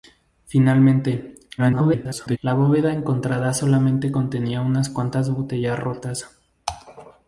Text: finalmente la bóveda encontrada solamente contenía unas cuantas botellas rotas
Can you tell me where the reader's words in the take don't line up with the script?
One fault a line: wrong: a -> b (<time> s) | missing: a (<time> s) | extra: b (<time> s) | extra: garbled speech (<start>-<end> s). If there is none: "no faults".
extra: garbled speech (1.6-2.4 s)